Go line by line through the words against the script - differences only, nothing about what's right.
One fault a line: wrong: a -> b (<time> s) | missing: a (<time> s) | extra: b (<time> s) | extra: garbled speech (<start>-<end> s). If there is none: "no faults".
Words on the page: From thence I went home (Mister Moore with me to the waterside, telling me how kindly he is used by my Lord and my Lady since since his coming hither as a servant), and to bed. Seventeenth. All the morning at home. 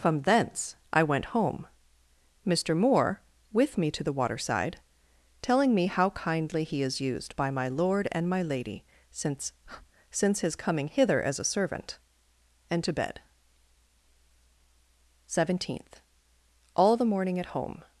no faults